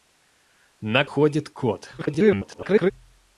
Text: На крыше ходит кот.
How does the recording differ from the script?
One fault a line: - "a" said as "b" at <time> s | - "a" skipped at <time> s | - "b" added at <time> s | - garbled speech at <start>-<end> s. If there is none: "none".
- "крыше" skipped at 1.1 s
- garbled speech at 2.0-2.9 s